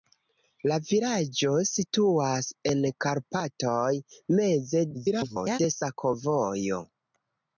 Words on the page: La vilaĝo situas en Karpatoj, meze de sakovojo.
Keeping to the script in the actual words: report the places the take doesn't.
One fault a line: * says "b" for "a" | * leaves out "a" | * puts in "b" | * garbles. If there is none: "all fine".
* garbles